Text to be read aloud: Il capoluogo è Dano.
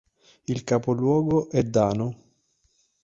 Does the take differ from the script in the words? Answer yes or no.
no